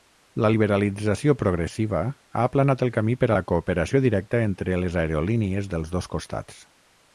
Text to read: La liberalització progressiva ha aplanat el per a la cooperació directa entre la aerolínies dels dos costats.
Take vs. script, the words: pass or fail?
fail